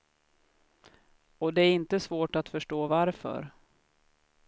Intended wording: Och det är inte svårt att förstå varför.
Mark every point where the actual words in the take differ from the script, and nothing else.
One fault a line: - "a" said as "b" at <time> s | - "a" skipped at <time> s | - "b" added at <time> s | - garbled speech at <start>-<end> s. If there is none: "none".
none